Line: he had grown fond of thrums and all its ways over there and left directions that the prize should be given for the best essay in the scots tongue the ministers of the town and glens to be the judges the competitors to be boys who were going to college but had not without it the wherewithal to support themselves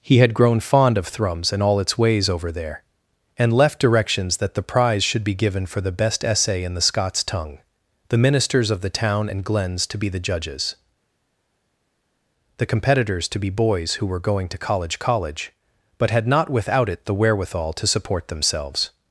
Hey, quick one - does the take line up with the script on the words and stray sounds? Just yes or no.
no